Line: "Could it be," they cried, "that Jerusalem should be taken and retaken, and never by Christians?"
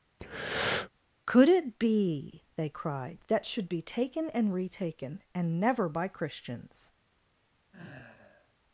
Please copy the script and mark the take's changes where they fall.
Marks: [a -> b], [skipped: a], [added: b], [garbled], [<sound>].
[breath] "Could it be," they cried, "that [skipped: Jerusalem] should be taken and retaken, and never by Christians?" [sigh]